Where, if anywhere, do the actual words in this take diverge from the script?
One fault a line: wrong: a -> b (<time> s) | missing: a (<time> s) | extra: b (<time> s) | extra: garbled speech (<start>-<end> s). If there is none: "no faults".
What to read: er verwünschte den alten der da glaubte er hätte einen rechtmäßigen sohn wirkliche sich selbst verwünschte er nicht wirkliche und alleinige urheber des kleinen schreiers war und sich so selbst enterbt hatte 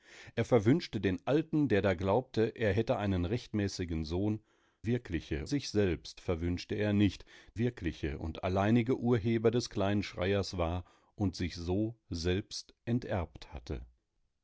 no faults